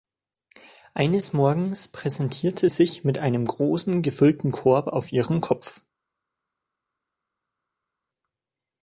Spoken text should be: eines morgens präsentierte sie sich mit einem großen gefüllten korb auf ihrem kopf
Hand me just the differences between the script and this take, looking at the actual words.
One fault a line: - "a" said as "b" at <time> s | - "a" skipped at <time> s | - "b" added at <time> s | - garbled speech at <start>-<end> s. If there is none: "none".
- "sie" skipped at 2.7 s